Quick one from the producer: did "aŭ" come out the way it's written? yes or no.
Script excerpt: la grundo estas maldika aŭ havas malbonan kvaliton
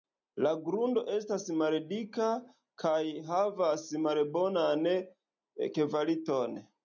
no